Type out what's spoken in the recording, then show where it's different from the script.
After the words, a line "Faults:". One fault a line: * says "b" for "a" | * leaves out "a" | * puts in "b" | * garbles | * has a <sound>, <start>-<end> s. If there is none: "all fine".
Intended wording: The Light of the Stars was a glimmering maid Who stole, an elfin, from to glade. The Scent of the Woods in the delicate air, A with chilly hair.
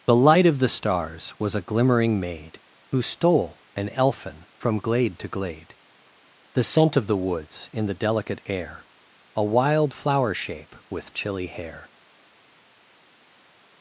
The Light of the Stars was a glimmering maid Who stole, an elfin, from glade to glade. The Scent of the Woods in the delicate air, A wild flower shape with chilly hair.
Faults:
* puts in "glade"
* puts in "wild flower shape"